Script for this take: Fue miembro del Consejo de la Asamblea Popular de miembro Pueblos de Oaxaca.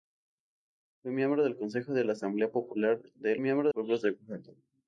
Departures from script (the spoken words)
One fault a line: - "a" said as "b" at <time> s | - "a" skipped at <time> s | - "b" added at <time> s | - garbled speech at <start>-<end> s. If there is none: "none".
none